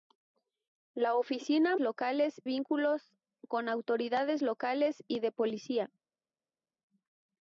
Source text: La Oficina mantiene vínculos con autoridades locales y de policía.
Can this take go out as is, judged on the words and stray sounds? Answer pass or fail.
fail